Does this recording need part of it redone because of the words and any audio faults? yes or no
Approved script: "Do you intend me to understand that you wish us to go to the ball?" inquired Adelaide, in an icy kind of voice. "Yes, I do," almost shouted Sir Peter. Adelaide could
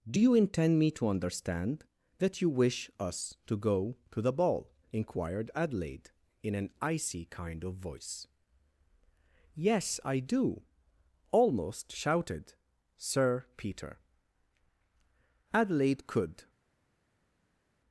no